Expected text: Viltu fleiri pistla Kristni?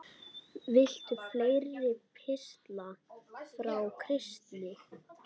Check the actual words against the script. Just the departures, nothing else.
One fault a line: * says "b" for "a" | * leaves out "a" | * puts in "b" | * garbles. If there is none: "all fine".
* puts in "frá"